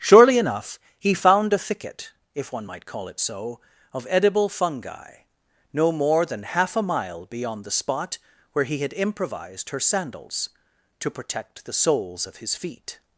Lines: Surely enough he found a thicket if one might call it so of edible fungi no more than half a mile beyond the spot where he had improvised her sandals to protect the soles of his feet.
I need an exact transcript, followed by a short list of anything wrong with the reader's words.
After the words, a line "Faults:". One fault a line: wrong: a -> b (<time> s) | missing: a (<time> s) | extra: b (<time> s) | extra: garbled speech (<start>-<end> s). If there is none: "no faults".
Surely enough he found a thicket if one might call it so of edible fungi no more than half a mile beyond the spot where he had improvised her sandals to protect the soles of his feet.
Faults:
no faults